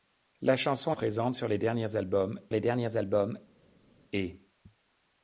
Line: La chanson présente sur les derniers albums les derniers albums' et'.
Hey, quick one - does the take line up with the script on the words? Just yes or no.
yes